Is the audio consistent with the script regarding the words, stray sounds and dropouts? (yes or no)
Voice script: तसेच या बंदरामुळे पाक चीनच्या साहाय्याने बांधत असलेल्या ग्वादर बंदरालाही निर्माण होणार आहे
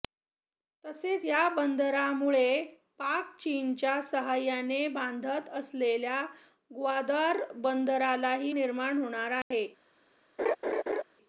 no